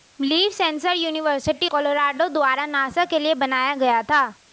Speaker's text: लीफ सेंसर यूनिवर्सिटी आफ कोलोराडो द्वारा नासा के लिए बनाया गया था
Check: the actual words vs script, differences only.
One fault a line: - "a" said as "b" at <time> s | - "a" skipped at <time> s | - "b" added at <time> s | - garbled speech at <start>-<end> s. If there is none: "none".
- "आफ" skipped at 1.7 s